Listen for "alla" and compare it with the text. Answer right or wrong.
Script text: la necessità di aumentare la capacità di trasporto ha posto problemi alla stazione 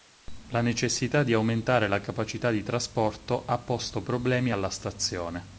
right